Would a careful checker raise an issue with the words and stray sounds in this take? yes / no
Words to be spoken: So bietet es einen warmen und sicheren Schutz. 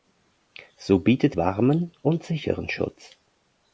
yes